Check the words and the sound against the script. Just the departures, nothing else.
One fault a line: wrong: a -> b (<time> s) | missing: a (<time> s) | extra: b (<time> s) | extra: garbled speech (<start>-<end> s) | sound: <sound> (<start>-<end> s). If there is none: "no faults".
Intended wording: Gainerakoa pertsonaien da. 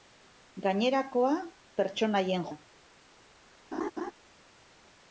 sound: laugh (3.7-4.1 s)